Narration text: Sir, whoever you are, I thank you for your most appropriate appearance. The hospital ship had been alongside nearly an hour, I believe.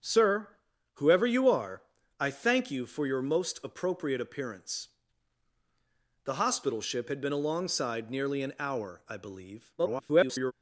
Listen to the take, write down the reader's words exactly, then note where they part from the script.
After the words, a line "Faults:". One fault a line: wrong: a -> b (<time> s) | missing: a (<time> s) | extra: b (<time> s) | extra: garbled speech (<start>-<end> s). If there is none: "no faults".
Sir, whoever you are, I thank you for your most appropriate appearance. The hospital ship had been alongside nearly an hour, I believe. [garbled]
Faults:
extra: garbled speech (9.8-10.5 s)